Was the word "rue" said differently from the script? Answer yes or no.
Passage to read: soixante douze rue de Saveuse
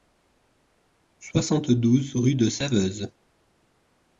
no